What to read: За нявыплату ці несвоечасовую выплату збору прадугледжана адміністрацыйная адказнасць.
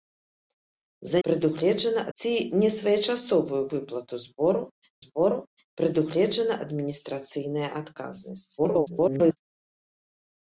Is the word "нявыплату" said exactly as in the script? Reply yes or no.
no